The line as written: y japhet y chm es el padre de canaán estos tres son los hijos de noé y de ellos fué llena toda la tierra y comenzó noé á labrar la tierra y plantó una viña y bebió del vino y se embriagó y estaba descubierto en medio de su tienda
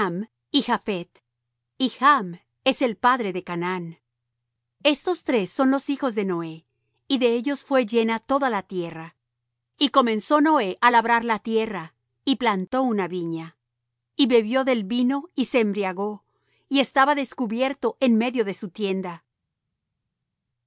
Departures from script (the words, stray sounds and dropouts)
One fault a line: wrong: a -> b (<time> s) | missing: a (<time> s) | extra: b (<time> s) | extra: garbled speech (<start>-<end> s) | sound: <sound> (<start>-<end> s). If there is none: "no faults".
no faults